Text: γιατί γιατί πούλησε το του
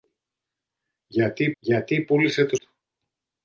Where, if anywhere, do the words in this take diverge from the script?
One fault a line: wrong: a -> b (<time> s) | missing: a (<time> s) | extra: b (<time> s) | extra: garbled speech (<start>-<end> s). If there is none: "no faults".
no faults